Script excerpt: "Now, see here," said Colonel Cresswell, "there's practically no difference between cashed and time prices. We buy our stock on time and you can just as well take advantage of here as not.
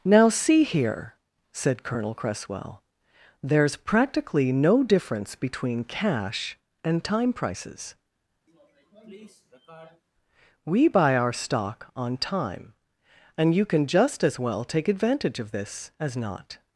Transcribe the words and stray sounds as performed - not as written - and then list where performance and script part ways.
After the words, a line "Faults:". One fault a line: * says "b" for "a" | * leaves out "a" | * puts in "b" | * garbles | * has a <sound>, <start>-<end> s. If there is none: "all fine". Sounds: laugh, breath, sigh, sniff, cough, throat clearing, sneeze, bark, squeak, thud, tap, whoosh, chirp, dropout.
"Now, see here," said Colonel Cresswell, "there's practically no difference between cash and time prices. We buy our stock on time and you can just as well take advantage of this as not.
Faults:
* says "cash" for "cashed"
* has a sniff, 8.5-10.0 s
* says "this" for "here"